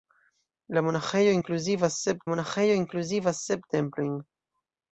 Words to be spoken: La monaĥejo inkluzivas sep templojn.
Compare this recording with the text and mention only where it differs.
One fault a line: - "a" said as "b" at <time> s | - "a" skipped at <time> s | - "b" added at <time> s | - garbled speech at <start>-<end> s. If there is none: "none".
- "monaĥejo inkluzivas sep" added at 2.3 s